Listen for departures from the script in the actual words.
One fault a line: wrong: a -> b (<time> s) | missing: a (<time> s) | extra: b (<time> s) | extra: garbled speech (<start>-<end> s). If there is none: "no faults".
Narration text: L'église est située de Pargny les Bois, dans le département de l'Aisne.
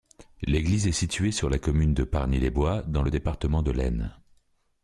extra: sur la commune (1.3 s)